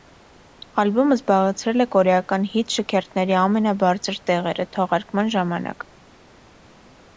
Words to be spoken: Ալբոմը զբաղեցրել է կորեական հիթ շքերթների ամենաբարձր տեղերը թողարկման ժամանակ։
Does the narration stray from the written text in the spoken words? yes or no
no